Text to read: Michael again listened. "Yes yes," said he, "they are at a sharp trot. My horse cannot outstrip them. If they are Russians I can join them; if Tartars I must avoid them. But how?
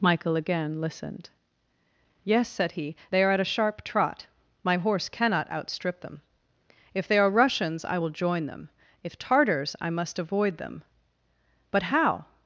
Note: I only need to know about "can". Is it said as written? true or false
false